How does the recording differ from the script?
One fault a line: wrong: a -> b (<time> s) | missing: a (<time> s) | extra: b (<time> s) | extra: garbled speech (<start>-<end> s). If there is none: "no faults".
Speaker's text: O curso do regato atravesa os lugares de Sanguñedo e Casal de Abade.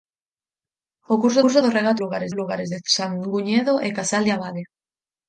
extra: curso (1.4 s)
wrong: atravesa -> lugares (2.0 s)